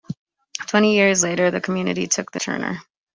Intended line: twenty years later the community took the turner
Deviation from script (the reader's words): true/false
false